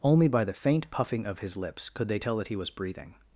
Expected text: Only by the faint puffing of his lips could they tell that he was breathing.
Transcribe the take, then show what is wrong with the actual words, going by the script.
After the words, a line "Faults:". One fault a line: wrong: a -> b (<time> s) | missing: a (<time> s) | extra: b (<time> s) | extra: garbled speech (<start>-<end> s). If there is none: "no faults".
Only by the faint puffing of his lips could they tell that he was breathing.
Faults:
no faults